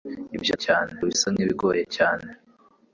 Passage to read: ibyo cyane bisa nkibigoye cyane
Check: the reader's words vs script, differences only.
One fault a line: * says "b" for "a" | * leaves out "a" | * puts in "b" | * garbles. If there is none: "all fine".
all fine